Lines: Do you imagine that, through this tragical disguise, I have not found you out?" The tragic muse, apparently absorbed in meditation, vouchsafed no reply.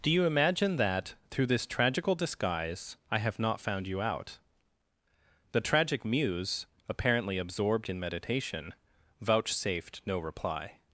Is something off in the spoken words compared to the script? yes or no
no